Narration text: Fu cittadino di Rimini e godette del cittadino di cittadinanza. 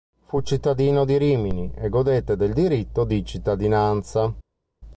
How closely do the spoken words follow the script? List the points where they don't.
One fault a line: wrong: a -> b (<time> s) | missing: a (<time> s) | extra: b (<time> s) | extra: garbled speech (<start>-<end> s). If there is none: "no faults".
wrong: cittadino -> diritto (2.5 s)